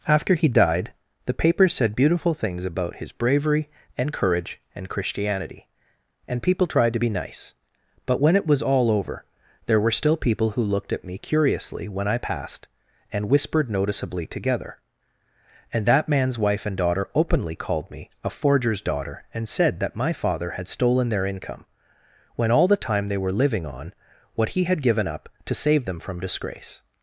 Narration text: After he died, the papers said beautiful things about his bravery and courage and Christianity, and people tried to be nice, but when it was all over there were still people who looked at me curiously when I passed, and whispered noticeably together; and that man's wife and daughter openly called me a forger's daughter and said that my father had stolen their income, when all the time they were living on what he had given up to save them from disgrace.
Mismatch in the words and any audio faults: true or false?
false